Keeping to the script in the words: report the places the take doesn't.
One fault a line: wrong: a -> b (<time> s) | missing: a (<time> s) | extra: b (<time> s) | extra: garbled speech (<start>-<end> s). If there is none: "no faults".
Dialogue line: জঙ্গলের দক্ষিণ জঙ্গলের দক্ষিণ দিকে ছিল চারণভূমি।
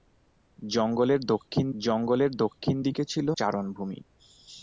no faults